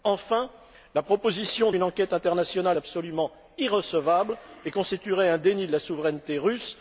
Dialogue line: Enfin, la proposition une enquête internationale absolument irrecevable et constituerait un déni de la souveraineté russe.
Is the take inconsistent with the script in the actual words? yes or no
no